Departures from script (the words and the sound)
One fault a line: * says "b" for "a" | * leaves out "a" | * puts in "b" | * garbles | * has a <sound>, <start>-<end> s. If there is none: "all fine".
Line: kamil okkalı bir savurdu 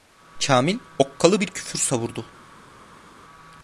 * puts in "küfür"